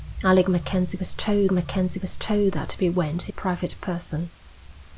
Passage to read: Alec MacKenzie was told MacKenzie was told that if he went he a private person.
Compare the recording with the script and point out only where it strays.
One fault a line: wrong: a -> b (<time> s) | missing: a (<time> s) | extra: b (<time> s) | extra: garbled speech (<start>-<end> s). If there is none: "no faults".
no faults